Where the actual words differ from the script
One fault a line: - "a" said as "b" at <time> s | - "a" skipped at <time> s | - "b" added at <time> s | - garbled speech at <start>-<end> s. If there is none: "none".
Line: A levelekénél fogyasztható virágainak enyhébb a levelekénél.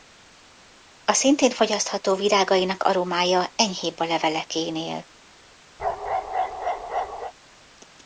- "levelekénél" said as "szintén" at 1.1 s
- "aromája" added at 2.8 s